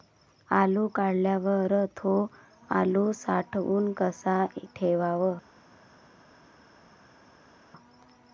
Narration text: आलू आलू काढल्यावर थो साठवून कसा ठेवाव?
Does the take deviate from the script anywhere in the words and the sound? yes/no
yes